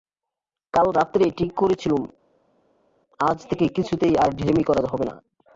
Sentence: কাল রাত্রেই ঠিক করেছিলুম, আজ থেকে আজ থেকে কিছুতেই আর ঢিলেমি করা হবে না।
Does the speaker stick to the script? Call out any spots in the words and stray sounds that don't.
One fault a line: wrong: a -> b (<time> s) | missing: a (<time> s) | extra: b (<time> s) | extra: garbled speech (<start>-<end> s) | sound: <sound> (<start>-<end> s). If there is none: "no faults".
missing: আজ থেকে (3.7 s)